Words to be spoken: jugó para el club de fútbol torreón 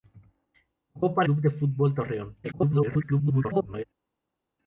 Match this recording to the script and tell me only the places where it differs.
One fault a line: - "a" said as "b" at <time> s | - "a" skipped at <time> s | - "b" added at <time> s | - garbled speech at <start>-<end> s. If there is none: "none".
- "el" skipped at 1.3 s
- garbled speech at 2.4-3.8 s